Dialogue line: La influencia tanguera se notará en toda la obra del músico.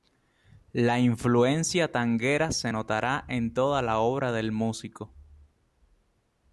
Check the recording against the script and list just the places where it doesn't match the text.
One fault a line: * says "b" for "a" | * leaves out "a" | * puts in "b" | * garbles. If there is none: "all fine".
all fine